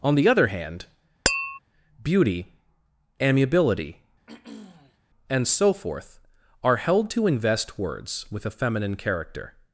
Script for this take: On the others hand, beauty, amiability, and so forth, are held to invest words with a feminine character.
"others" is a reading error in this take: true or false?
true